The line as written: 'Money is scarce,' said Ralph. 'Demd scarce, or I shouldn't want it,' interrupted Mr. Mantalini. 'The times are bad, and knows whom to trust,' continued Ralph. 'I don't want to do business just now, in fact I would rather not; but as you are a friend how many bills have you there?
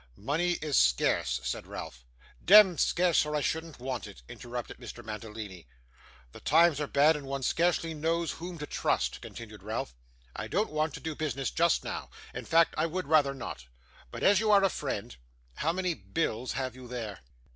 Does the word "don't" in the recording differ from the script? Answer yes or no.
no